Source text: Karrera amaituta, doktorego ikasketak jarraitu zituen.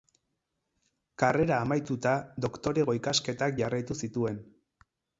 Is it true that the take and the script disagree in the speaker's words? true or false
false